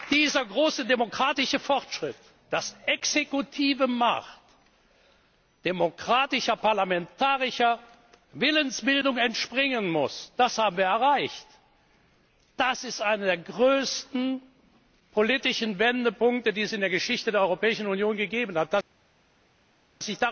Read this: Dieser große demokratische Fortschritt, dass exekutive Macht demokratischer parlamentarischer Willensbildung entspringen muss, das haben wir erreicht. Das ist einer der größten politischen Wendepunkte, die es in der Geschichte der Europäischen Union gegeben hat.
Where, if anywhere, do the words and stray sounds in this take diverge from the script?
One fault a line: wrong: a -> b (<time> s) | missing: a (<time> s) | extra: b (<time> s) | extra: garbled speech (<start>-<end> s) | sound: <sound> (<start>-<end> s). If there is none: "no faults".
no faults